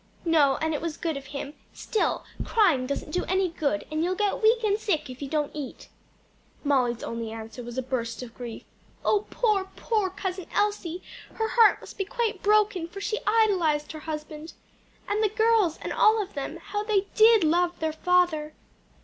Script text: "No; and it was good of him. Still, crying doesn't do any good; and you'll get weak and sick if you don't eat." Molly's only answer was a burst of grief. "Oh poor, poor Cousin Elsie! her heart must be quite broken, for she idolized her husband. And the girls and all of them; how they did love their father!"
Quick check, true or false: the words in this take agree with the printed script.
true